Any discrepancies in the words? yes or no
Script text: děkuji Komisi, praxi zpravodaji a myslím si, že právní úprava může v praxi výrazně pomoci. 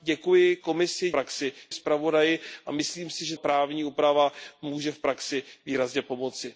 no